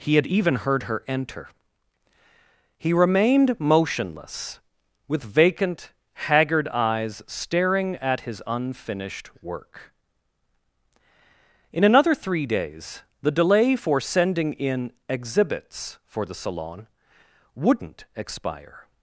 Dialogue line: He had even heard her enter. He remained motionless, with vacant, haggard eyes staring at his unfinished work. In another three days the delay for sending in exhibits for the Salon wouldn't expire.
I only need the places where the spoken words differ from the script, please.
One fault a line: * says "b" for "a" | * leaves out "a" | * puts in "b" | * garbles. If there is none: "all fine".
all fine